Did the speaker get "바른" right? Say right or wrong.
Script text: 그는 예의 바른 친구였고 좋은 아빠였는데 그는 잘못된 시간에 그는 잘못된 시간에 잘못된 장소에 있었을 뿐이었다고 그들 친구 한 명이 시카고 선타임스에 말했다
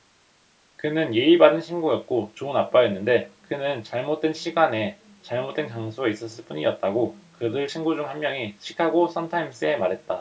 right